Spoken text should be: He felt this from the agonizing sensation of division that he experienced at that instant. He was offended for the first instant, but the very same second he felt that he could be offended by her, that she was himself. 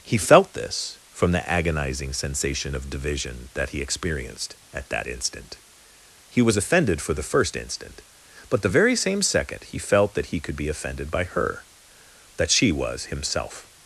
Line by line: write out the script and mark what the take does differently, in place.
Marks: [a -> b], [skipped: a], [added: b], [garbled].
He felt this from the agonizing sensation of division that he experienced at that instant. He was offended for the first instant, but the very same second he felt that he could be offended by her, that she was himself.